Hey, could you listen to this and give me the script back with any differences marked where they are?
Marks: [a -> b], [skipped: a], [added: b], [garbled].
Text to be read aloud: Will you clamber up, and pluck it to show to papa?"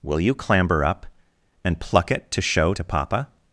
Will you clamber up, and pluck it to show to papa?"